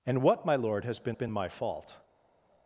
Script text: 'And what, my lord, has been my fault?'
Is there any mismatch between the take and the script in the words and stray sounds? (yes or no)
yes